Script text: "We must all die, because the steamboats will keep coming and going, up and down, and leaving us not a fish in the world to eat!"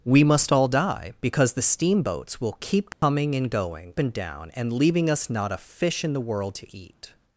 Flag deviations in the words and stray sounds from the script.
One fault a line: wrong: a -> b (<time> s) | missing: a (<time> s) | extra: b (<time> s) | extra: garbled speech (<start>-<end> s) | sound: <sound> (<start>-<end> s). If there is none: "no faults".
sound: dropout (2.9-3.0 s)
missing: up (3.9 s)